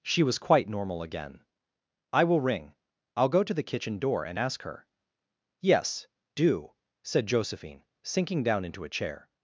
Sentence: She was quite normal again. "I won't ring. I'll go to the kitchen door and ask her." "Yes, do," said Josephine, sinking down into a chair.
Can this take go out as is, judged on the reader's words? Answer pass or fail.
fail